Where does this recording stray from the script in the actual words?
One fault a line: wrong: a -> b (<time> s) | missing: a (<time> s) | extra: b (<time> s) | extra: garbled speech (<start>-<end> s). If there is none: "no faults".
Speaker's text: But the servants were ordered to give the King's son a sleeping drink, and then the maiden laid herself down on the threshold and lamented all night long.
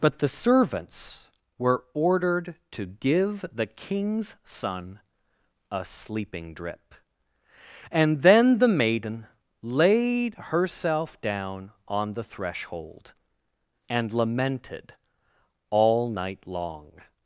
wrong: drink -> drip (6.5 s)